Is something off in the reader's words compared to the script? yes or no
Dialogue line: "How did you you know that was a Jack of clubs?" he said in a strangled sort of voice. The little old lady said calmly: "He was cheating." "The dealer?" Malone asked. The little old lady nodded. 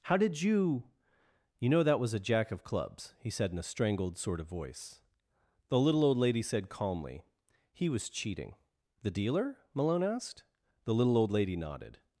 no